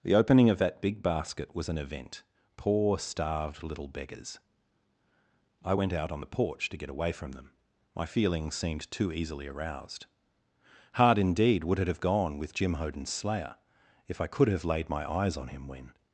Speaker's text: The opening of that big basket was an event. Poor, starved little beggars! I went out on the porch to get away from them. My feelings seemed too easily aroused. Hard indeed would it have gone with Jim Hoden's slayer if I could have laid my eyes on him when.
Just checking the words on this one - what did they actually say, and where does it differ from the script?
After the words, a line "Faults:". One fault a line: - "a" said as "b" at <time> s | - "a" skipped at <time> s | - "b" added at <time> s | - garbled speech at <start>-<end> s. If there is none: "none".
The opening of that big basket was an event. Poor, starved little beggars! I went out on the porch to get away from them. My feelings seemed too easily aroused. Hard indeed would it have gone with Jim Hoden's slayer if I could have laid my eyes on him when.
Faults:
none